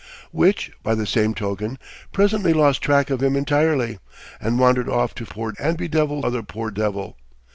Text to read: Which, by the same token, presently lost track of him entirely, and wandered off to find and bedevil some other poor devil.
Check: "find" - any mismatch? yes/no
yes